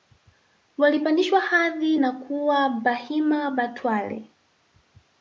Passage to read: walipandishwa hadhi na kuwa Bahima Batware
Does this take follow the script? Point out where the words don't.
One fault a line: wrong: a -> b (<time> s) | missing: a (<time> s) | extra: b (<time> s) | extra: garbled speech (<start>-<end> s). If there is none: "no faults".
no faults